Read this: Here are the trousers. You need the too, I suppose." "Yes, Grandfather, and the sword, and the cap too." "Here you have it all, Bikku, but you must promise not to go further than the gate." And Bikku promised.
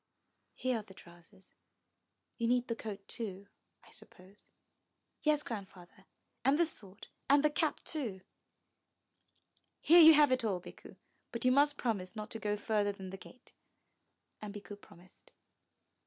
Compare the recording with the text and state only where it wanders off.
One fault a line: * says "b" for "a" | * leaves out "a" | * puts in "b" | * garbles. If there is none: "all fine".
* puts in "coat"